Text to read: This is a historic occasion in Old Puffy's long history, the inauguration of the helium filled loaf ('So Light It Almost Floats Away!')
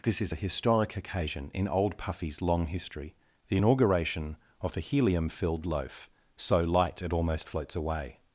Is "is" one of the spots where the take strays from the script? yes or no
no